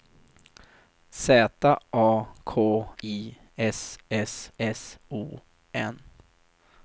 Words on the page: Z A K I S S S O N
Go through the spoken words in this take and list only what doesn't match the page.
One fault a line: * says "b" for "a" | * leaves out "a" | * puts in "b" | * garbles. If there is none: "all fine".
all fine